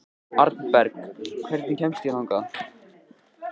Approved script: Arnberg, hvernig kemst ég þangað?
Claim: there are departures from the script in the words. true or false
false